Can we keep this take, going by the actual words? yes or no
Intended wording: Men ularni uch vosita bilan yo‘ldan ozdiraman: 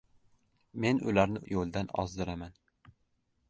no